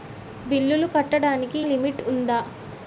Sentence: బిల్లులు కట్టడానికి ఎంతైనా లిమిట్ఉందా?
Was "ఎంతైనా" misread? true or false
true